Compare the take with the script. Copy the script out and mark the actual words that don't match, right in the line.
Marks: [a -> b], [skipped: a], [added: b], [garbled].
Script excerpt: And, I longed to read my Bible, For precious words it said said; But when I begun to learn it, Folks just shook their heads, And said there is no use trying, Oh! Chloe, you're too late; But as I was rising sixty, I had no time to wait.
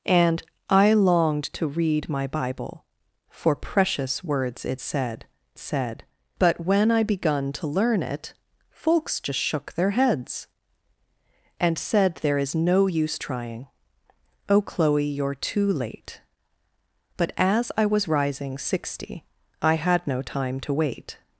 And, I longed to read my Bible, For precious words it said said; But when I begun to learn it, Folks just shook their heads, And said there is no use trying, Oh! Chloe, you're too late; But as I was rising sixty, I had no time to wait.